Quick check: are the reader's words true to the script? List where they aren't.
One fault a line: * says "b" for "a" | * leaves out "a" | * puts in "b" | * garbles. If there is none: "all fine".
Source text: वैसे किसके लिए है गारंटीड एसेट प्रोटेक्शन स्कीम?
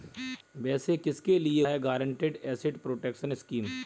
all fine